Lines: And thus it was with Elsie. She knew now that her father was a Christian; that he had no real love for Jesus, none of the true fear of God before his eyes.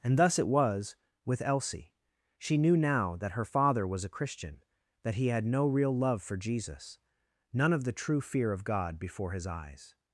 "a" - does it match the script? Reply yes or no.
yes